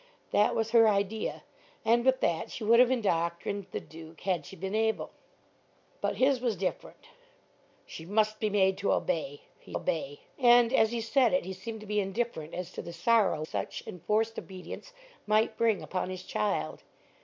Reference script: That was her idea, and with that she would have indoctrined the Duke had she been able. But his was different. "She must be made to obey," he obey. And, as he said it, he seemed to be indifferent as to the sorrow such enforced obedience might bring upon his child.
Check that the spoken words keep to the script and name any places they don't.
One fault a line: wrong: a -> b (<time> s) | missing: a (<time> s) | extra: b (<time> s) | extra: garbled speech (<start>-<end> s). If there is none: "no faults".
no faults